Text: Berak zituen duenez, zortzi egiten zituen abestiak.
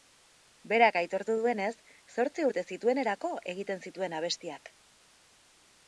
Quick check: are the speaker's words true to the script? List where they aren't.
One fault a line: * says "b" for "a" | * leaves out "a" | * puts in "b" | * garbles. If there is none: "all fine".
* says "aitortu" for "zituen"
* puts in "urte zituenerako"